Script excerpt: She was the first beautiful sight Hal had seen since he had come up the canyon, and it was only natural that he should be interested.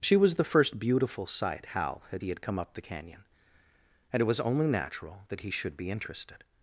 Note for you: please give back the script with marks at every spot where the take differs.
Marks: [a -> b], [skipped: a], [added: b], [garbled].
She was the first beautiful sight Hal had [skipped: seen since] he had come up the canyon, and it was only natural that he should be interested.